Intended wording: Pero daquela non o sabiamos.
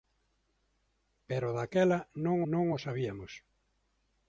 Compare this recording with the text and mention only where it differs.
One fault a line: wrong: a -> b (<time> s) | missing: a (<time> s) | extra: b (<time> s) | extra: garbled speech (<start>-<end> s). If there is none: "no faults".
extra: non (2.5 s)